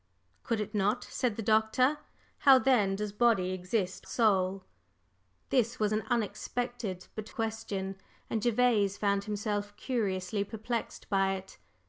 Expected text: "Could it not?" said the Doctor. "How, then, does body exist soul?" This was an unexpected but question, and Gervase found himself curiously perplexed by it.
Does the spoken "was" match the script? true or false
true